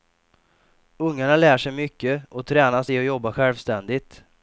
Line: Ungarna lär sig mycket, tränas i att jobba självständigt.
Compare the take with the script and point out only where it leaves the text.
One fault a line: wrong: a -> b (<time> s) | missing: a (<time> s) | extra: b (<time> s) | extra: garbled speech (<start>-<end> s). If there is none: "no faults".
extra: och (2.3 s)